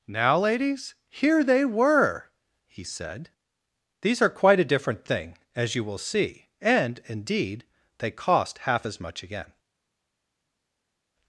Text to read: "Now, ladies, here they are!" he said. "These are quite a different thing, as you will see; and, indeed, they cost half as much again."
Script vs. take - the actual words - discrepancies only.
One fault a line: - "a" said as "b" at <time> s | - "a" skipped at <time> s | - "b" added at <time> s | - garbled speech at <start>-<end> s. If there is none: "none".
- "are" said as "were" at 1.6 s